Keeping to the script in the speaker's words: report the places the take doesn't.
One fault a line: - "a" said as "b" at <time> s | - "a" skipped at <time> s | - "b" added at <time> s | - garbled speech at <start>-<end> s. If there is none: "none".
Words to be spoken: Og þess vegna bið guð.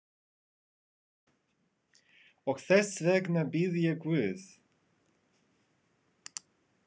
- "ég" added at 3.8 s